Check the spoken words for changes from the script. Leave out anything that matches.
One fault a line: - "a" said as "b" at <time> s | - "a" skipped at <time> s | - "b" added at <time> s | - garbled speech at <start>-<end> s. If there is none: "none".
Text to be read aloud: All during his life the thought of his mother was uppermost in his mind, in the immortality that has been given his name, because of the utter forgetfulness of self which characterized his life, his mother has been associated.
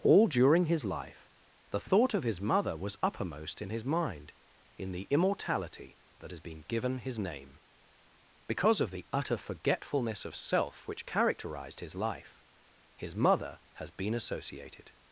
none